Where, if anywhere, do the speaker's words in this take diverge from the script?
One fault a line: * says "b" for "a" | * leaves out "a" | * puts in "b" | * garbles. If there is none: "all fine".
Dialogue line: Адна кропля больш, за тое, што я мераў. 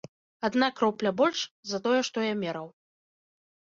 all fine